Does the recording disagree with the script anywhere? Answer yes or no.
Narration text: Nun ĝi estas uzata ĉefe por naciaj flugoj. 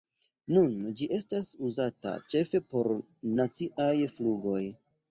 no